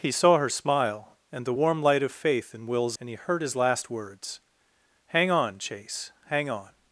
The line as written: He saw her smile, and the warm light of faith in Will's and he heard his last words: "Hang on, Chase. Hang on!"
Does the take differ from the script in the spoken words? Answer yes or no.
no